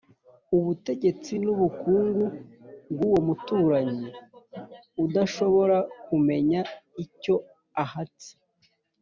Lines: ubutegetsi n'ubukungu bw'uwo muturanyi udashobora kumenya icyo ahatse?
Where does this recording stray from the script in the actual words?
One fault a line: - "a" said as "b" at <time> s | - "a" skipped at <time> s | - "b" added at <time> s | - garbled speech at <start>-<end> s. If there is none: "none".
none